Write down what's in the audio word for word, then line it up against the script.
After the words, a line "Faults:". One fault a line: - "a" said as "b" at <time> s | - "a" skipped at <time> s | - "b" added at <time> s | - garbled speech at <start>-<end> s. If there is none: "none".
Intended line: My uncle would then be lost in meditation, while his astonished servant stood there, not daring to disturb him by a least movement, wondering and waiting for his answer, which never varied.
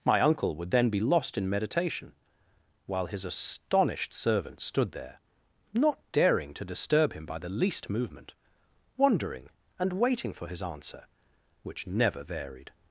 My uncle would then be lost in meditation, while his astonished servant stood there, not daring to disturb him by the least movement, wondering and waiting for his answer, which never varied.
Faults:
- "a" said as "the" at 7.4 s